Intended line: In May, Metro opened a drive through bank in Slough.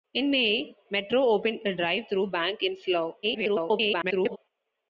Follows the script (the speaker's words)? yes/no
no